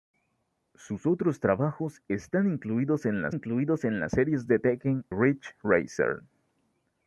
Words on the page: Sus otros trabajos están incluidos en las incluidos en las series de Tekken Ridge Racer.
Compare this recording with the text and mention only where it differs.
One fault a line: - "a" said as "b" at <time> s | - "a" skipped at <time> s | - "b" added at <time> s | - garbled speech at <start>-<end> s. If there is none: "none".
none